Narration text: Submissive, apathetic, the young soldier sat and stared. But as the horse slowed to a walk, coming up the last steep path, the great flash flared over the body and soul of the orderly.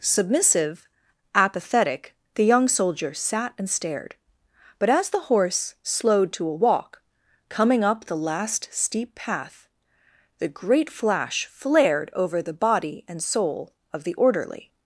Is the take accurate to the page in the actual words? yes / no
yes